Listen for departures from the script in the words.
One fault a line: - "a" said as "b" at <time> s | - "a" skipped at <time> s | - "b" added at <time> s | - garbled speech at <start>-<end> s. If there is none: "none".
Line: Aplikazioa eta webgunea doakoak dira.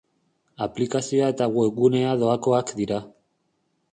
none